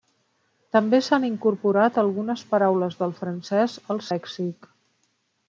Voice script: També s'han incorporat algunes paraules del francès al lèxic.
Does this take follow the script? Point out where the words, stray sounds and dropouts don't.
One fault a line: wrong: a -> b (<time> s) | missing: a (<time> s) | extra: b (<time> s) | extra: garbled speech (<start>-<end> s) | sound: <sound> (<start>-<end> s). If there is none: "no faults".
no faults